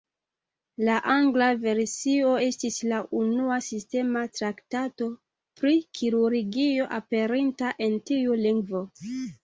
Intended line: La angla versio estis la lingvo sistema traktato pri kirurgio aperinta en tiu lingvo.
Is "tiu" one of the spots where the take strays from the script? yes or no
no